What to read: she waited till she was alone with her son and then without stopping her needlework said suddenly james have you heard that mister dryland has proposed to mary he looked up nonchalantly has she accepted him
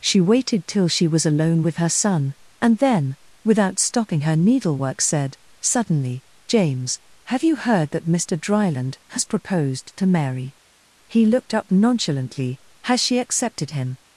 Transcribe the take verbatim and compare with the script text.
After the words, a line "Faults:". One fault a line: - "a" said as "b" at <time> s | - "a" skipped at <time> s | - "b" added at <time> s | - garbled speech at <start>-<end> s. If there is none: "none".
she waited till she was alone with her son and then without stopping her needlework said suddenly james have you heard that mister dryland has proposed to mary he looked up nonchalantly has she accepted him
Faults:
none